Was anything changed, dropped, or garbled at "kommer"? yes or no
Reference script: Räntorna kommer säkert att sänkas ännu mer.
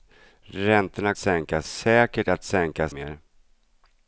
yes